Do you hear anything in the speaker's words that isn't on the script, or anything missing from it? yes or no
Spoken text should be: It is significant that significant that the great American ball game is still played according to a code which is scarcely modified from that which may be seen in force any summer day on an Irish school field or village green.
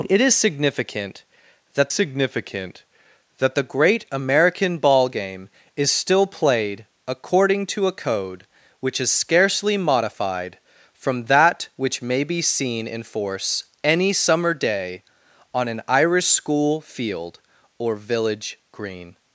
no